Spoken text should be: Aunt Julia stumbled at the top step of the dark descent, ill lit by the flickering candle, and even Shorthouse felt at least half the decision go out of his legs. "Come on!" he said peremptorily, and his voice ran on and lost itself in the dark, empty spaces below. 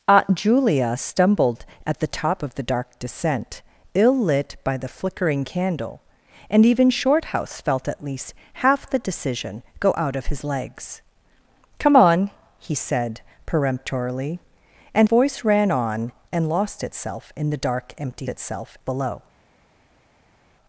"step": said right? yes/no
no